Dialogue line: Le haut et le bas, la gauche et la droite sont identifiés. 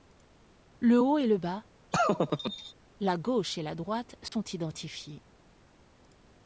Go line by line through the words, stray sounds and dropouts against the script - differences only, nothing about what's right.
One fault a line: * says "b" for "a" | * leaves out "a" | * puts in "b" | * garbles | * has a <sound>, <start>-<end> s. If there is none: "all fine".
* has a laugh, 1.9-2.7 s
* has a dropout, 4.3-4.3 s